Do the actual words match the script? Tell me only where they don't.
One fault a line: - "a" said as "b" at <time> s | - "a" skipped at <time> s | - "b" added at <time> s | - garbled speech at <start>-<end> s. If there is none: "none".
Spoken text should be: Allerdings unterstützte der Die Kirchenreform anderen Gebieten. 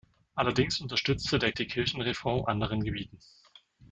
none